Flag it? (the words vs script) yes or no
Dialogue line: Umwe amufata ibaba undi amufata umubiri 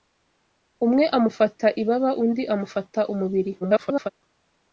yes